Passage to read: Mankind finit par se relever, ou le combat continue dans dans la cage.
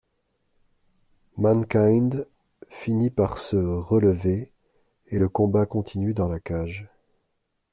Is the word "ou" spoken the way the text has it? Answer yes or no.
no